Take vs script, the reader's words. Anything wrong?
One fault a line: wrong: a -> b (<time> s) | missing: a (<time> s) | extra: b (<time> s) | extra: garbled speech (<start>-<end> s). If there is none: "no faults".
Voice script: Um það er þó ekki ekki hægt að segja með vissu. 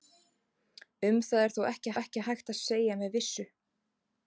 no faults